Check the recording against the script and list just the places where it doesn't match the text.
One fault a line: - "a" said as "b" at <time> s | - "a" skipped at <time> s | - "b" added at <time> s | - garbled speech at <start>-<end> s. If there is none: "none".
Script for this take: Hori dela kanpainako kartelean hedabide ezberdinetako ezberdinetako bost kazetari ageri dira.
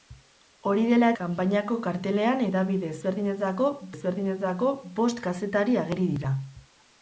none